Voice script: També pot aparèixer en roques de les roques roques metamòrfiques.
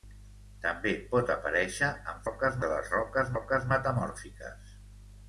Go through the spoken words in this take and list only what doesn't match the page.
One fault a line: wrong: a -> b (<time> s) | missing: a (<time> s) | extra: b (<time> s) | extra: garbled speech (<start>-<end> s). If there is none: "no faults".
no faults